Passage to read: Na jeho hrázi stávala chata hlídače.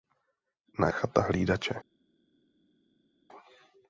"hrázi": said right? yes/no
no